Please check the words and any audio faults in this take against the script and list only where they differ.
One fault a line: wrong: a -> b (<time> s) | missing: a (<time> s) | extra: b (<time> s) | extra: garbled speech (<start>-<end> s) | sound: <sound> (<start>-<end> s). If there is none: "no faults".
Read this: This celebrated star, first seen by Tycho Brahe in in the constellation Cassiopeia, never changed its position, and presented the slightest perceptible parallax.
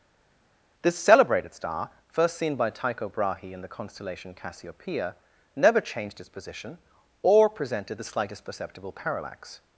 missing: in (3.6 s)
wrong: and -> or (7.2 s)